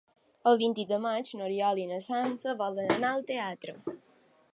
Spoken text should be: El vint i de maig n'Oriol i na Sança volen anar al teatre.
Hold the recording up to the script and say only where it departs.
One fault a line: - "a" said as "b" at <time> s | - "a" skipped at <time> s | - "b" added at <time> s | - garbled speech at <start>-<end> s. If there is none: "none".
none